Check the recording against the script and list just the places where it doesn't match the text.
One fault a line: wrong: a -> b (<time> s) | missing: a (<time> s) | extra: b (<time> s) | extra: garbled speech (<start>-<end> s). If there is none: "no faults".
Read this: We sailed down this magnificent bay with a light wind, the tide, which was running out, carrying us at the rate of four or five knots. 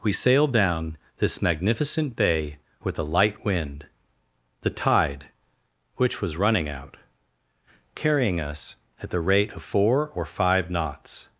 no faults